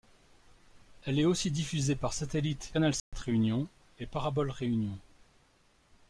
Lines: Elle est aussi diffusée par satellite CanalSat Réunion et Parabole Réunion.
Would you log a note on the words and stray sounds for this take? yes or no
yes